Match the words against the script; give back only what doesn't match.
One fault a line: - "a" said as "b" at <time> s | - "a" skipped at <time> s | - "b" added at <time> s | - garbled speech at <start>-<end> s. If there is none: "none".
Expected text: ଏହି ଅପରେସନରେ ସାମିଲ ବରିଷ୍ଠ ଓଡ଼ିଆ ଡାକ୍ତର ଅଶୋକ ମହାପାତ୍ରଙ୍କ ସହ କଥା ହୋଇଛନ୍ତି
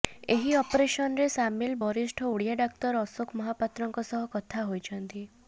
none